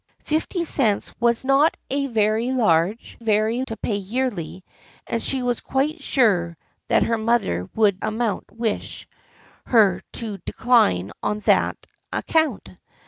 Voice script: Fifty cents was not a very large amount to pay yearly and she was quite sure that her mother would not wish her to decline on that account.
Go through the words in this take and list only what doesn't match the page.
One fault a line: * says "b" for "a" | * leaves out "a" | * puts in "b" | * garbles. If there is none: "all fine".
* says "very" for "amount"
* says "amount" for "not"